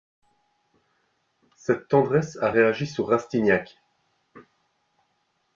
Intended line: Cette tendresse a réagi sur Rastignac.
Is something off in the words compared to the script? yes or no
no